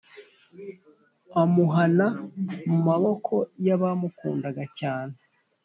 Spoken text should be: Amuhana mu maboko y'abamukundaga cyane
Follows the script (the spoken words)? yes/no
yes